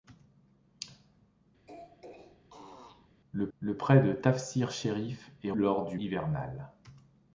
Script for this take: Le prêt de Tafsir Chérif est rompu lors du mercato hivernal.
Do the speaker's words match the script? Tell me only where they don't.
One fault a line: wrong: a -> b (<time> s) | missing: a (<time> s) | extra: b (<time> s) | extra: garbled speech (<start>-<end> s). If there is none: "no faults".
extra: le (3.6 s)
missing: rompu (5.5 s)
missing: mercato (6.0 s)